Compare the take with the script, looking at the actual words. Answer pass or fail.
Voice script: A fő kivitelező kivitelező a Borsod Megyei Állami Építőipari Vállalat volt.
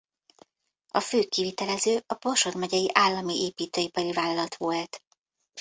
fail